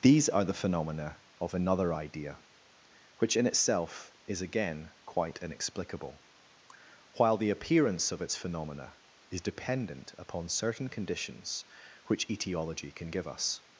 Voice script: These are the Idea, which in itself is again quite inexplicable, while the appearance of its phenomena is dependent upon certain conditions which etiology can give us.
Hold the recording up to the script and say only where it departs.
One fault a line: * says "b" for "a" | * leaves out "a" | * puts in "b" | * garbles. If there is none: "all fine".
* puts in "phenomena of another"